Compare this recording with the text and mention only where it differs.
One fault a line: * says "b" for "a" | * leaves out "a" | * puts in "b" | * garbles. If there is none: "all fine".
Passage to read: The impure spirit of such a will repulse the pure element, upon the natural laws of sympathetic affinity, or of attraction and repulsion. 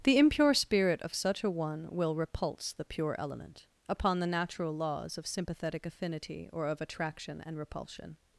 * puts in "one"